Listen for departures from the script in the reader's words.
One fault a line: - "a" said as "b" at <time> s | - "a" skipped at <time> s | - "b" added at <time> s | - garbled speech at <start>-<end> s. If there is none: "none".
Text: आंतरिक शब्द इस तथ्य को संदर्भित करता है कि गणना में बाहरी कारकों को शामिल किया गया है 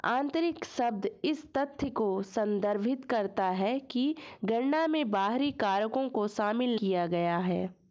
none